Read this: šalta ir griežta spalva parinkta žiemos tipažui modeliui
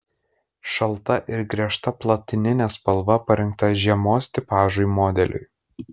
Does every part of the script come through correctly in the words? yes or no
no